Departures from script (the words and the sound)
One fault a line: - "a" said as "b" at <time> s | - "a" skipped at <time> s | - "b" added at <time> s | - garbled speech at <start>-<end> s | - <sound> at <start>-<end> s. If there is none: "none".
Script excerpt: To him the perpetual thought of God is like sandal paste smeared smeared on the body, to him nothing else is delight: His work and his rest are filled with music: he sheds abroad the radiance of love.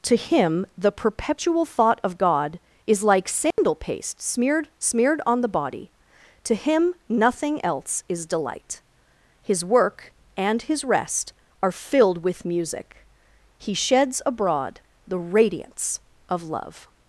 - dropout at 3.5-3.6 s